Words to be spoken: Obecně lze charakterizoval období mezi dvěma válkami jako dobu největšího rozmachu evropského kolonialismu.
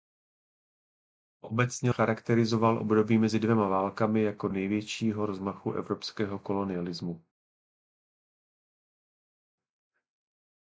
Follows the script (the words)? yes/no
no